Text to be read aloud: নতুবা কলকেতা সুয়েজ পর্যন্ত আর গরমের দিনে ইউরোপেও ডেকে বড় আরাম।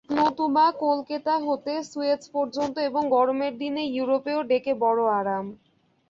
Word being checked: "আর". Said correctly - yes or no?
no